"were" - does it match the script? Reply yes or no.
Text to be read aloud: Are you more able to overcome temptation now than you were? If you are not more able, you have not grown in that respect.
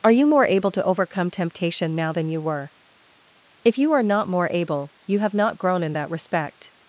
yes